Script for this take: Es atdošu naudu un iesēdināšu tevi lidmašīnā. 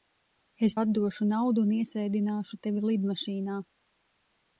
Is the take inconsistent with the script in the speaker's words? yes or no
no